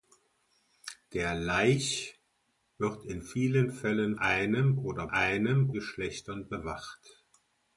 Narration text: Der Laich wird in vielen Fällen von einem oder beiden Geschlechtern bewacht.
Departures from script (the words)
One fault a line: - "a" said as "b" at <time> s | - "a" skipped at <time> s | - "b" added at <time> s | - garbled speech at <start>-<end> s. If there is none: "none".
- "von" skipped at 4.2 s
- "beiden" said as "einem" at 5.1 s